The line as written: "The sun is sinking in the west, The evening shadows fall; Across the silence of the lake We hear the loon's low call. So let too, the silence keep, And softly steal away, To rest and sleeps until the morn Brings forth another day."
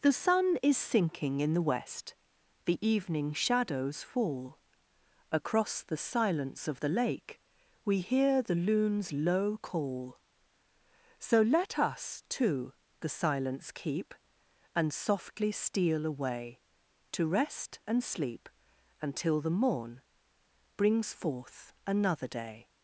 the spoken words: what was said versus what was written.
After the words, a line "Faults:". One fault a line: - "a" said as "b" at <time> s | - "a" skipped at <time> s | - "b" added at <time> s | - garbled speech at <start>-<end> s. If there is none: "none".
"The sun is sinking in the west, The evening shadows fall; Across the silence of the lake We hear the loon's low call. So let us, too, the silence keep, And softly steal away, To rest and sleep until the morn Brings forth another day."
Faults:
- "us" added at 11.8 s
- "sleeps" said as "sleep" at 18.0 s